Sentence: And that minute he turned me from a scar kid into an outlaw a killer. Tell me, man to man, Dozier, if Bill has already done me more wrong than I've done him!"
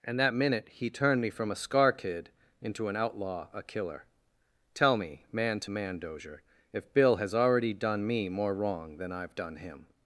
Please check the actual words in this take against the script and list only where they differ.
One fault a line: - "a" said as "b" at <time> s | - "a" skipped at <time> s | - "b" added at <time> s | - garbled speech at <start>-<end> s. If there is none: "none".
none